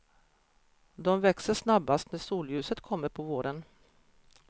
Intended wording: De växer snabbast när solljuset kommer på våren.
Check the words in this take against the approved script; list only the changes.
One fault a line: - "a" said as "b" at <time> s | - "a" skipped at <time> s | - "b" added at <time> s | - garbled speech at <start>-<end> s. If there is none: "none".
none